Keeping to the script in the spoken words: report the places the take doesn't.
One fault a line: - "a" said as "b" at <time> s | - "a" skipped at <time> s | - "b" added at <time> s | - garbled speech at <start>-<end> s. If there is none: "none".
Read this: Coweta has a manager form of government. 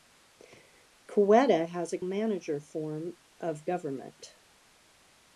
none